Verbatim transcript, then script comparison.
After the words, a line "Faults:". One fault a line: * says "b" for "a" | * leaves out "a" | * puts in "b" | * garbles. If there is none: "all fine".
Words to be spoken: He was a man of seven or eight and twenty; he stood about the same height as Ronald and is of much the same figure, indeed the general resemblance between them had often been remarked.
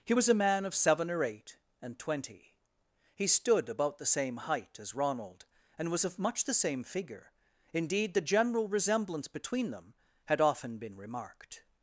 He was a man of seven or eight and twenty; he stood about the same height as Ronald and was of much the same figure, indeed the general resemblance between them had often been remarked.
Faults:
* says "was" for "is"